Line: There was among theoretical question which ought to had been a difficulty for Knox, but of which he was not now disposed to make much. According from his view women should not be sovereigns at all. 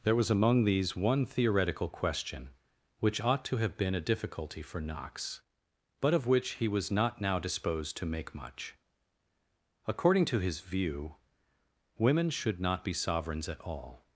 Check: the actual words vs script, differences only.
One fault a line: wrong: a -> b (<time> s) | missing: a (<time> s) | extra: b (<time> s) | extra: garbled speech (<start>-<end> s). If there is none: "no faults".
extra: these one (0.6 s)
wrong: had -> have (3.6 s)
wrong: from -> to (10.2 s)